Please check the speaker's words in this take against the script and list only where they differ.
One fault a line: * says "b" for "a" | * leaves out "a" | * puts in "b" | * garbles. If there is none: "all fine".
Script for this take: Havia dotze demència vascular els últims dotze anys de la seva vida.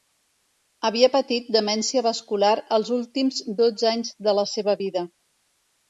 * says "patit" for "dotze"